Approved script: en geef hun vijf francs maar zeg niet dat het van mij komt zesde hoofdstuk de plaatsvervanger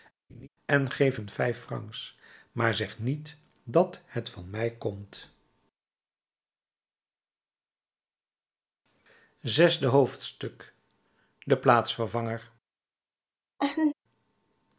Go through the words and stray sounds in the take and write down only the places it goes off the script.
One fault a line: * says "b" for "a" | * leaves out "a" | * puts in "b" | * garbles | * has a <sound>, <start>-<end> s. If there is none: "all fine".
* has a laugh, 0.3-0.5 s
* has a laugh, 13.6-13.9 s